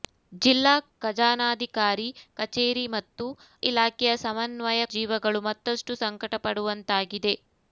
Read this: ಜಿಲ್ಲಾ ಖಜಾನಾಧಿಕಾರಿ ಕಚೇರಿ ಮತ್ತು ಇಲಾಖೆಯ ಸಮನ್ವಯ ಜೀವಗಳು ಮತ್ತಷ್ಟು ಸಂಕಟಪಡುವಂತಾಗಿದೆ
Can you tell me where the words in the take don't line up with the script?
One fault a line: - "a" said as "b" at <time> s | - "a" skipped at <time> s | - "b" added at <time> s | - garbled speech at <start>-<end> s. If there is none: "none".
none